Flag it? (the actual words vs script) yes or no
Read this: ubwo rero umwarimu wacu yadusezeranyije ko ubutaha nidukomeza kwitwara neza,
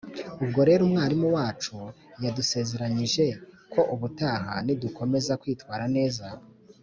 no